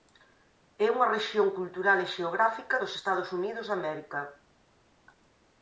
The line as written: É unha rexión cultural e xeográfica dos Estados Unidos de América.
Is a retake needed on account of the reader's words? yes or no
no